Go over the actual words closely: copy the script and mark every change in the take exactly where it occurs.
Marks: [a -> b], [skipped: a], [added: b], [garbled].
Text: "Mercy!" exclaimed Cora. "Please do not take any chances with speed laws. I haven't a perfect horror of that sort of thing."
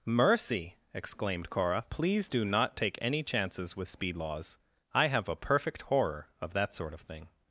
"Mercy!" exclaimed Cora. "Please do not take any chances with speed laws. I [haven't -> have] a perfect horror of that sort of thing."